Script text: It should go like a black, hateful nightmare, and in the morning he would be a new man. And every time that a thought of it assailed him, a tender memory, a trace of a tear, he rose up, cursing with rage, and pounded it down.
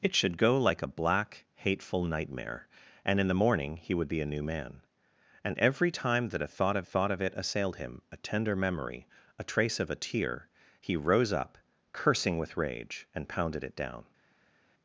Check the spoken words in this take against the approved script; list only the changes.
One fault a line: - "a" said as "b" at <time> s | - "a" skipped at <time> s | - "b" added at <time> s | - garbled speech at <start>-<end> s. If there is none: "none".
- "thought of" added at 6.8 s